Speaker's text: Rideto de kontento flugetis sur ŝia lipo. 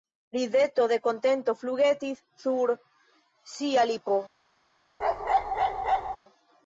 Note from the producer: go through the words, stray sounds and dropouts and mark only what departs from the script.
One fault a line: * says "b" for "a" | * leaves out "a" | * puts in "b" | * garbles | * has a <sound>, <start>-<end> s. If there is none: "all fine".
* has a bark, 5.0-6.2 s